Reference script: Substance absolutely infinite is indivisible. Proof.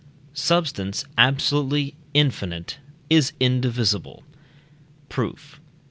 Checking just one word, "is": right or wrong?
right